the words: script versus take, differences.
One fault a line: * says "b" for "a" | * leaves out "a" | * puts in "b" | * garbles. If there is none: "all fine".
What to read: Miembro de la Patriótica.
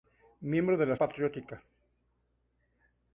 all fine